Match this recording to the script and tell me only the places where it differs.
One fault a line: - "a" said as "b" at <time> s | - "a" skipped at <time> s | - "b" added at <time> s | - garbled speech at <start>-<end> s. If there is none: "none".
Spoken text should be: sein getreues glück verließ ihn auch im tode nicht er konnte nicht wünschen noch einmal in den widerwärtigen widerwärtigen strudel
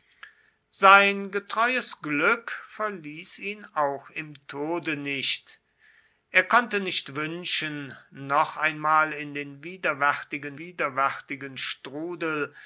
none